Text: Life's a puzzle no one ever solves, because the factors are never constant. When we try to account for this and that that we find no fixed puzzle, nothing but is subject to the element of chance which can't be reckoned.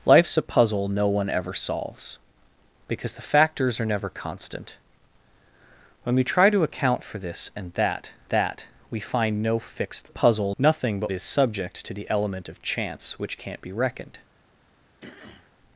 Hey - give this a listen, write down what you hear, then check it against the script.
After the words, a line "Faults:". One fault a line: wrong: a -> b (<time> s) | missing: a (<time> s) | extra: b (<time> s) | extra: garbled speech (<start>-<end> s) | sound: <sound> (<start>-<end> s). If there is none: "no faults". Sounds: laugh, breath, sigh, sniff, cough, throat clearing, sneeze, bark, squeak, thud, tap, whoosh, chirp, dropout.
Life's a puzzle no one ever solves, because the factors are never constant. When we try to account for this and that that we find no fixed puzzle, nothing but is subject to the element of chance which can't be reckoned.
Faults:
sound: throat clearing (15.0-15.5 s)